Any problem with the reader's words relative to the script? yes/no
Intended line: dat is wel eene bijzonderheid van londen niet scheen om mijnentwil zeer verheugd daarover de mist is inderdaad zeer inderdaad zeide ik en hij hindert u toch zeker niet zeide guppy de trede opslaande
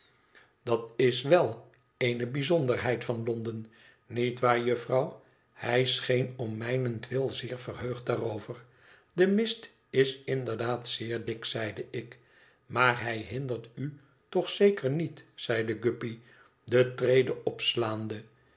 yes